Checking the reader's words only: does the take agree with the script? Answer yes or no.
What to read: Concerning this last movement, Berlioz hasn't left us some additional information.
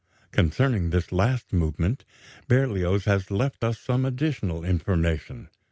no